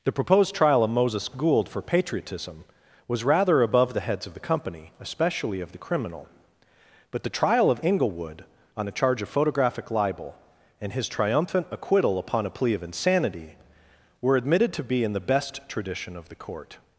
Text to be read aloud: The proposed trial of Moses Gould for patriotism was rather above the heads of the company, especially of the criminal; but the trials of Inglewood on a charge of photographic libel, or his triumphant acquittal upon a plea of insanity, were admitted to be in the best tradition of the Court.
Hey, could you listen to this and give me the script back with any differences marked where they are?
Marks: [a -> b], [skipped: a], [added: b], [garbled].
The proposed trial of Moses Gould for patriotism was rather above the heads of the company, especially of the criminal; but the [trials -> trial] of Inglewood on a charge of photographic libel, [or -> and] his triumphant acquittal upon a plea of insanity, were admitted to be in the best tradition of the Court.